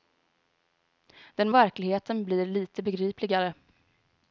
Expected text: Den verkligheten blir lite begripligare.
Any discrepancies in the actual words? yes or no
no